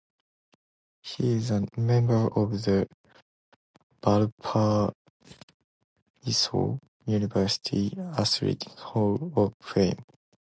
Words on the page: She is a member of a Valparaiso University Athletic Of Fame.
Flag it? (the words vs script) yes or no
yes